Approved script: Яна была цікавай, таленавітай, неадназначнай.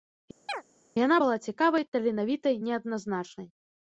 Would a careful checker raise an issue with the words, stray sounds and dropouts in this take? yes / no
yes